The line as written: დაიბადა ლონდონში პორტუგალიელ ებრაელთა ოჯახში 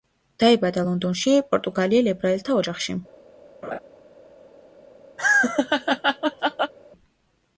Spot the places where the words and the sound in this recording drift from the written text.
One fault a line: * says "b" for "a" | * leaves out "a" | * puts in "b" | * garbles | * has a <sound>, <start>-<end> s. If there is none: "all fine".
* has a laugh, 3.6-3.8 s
* has a laugh, 5.2-6.7 s